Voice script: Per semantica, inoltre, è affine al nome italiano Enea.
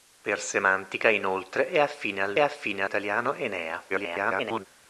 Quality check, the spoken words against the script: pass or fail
fail